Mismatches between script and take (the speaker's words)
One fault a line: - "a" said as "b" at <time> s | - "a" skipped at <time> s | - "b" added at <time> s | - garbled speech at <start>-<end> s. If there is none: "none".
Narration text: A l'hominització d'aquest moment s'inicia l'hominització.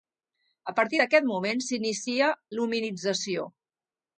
- "l'hominització" said as "partir" at 0.8 s